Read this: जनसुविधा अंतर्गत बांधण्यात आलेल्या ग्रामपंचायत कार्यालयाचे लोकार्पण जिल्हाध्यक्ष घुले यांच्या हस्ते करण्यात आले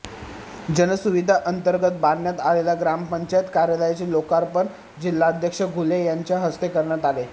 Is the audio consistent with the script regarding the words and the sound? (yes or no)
yes